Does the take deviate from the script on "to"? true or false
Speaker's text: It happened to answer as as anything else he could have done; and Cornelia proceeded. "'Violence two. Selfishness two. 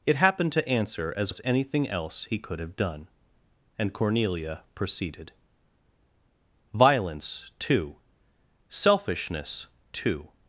false